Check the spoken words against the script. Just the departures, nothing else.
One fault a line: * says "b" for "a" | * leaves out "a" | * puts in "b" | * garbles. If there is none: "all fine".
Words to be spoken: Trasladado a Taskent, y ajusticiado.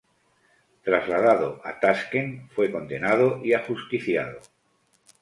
* puts in "fue condenado"